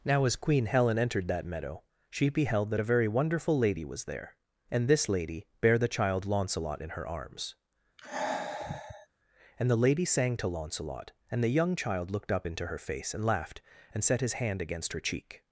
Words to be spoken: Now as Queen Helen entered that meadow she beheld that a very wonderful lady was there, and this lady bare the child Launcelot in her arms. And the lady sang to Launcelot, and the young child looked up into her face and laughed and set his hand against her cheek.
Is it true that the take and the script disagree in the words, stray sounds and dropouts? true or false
true